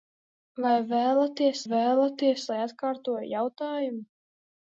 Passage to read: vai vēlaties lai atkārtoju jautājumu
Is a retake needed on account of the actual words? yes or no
yes